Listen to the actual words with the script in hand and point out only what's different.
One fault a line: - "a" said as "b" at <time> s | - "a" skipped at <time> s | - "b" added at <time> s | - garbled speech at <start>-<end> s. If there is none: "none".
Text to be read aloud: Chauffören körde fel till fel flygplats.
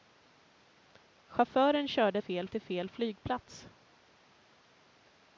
none